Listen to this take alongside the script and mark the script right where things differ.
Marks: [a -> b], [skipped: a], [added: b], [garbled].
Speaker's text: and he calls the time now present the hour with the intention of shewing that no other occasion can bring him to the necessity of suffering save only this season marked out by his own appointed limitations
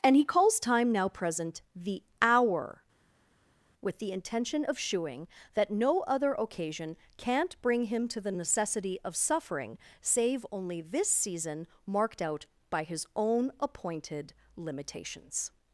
and he calls [skipped: the] time now present the hour with the intention of shewing that no other occasion [can -> can't] bring him to the necessity of suffering save only this season marked out by his own appointed limitations